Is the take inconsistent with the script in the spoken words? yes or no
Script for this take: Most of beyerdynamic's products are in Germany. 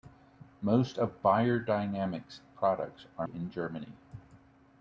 no